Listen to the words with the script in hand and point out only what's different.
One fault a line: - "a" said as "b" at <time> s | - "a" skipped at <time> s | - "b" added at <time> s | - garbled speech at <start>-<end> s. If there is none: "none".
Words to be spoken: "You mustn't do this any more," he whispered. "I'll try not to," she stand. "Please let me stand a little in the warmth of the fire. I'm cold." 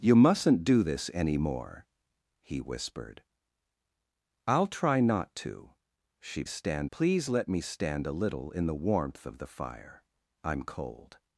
none